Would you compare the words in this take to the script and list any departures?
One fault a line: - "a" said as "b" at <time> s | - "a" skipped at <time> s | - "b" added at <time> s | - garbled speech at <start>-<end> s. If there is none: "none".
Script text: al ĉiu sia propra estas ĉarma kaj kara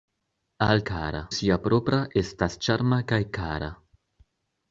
- "ĉiu" said as "kara" at 0.9 s